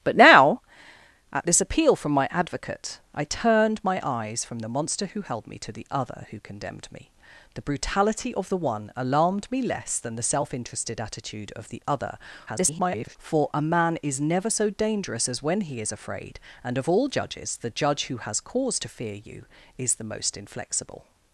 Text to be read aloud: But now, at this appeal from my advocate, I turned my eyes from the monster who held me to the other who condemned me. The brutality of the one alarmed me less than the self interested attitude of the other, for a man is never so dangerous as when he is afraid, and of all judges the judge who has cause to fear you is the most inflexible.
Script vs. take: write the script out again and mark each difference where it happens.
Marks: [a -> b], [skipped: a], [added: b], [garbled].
But now, at this appeal from my advocate, I turned my eyes from the monster who held me to the other who condemned me. The brutality of the one alarmed me less than the self interested attitude of the other, [garbled] for a man is never so dangerous as when he is afraid, and of all judges the judge who has cause to fear you is the most inflexible.